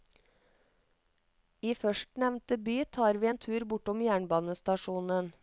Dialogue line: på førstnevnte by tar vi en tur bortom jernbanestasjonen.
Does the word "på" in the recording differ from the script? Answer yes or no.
yes